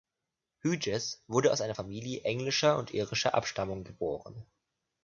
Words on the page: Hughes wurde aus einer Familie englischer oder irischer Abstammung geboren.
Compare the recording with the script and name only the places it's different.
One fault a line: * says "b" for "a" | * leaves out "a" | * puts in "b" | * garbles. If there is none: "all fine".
* says "und" for "oder"